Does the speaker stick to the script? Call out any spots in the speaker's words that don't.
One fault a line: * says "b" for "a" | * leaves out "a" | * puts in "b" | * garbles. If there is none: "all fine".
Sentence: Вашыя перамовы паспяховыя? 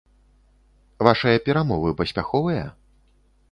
all fine